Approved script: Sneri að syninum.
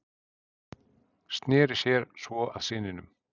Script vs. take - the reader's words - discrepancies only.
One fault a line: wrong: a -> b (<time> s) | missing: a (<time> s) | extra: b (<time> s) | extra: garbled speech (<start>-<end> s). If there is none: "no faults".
extra: sér svo (1.8 s)